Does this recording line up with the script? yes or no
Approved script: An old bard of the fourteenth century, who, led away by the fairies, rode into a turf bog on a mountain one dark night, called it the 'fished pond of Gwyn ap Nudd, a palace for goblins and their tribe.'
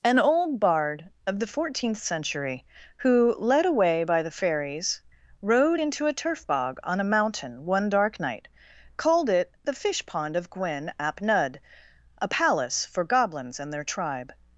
no